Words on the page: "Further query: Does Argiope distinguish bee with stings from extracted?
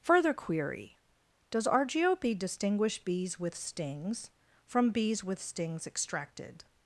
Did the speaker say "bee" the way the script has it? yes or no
no